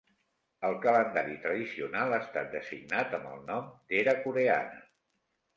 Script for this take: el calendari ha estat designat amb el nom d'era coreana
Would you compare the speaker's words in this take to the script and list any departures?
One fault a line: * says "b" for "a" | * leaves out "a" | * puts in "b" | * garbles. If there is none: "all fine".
* puts in "tradicional"